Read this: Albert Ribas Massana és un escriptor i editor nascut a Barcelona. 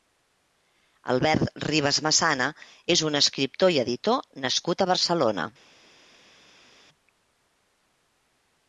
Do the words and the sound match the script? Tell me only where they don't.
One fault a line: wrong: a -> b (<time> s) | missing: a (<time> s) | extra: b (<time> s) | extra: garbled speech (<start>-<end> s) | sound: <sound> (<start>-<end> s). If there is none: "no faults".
no faults